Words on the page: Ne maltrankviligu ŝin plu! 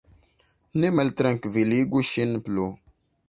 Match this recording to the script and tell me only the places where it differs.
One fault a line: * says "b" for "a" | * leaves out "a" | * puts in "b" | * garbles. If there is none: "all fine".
all fine